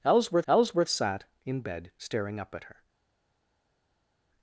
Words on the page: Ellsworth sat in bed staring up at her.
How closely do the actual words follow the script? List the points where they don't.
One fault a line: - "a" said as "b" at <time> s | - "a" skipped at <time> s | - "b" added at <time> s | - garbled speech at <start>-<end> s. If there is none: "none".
- "ellsworth" added at 0.5 s